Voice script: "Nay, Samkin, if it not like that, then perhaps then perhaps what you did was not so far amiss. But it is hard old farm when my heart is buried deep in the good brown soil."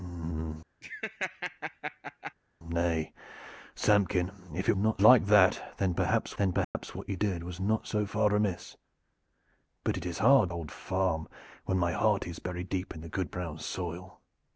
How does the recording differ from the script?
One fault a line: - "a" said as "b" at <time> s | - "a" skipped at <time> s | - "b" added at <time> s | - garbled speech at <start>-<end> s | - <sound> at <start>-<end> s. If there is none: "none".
- laugh at 0.8-2.3 s
- dropout at 6.6-6.7 s